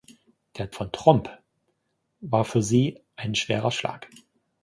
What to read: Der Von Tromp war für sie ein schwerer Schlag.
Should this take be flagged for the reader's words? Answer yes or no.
no